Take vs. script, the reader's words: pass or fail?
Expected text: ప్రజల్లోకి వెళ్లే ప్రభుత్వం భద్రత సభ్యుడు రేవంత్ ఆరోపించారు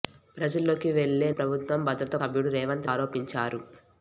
pass